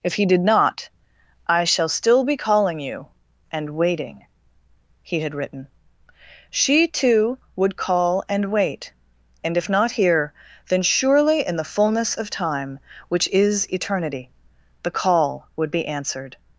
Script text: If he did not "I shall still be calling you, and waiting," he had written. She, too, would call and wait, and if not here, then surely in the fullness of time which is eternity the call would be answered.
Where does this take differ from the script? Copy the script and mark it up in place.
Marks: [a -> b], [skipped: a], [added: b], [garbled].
If he did not "I shall still be calling you, and waiting," he had written. She, too, would call and wait, and if not here, then surely in the fullness of time which is eternity the call would be answered.